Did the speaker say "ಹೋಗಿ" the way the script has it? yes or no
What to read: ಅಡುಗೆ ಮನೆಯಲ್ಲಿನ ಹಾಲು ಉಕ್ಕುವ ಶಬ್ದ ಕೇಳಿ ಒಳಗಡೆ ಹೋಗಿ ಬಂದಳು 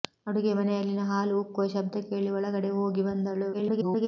yes